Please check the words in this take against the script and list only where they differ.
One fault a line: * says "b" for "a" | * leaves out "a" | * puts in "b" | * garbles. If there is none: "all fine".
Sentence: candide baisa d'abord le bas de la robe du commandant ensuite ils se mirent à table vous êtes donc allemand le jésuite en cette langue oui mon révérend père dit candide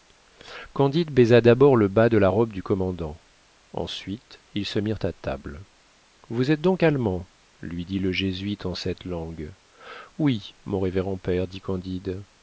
* puts in "lui dit"